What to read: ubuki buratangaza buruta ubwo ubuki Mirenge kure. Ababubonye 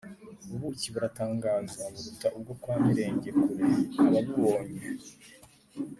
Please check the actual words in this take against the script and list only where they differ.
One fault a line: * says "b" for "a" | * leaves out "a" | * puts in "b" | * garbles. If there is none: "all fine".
* says "kwa" for "ubuki"